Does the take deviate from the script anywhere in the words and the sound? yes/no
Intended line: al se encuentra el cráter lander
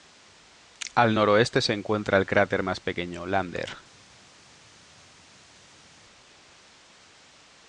yes